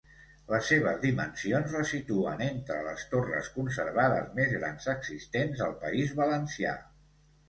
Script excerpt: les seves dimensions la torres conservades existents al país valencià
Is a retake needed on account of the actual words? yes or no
yes